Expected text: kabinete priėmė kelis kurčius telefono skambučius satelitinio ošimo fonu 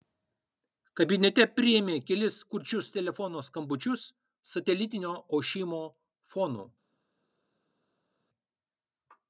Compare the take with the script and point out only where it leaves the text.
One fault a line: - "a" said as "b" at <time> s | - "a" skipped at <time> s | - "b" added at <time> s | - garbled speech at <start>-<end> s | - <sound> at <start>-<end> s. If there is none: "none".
none